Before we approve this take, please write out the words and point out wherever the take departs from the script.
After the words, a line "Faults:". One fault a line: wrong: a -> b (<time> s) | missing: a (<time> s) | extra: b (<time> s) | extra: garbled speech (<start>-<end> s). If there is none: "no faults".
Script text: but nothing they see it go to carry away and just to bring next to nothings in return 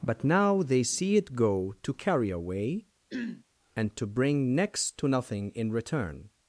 but now they see it go to carry away and to bring next to nothing in return
Faults:
wrong: nothing -> now (0.2 s)
missing: just (4.0 s)
wrong: nothings -> nothing (5.1 s)